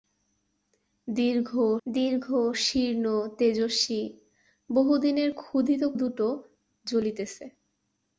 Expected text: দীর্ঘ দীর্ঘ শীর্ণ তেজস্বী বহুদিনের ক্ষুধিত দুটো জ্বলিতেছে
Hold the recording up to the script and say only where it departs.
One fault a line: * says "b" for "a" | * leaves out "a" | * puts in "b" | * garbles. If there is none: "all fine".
all fine